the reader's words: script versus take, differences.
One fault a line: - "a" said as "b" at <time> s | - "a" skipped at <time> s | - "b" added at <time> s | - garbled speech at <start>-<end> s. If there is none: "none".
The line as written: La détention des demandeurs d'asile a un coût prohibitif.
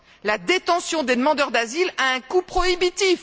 none